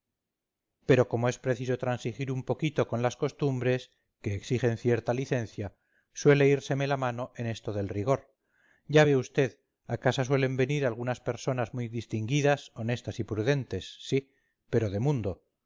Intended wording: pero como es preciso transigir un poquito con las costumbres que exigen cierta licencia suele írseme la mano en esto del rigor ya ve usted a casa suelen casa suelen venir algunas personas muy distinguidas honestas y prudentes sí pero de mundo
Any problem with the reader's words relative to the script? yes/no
yes